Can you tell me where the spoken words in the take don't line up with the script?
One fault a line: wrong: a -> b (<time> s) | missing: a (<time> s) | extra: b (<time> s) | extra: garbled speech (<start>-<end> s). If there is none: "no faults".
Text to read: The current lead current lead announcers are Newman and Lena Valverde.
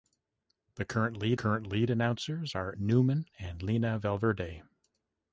no faults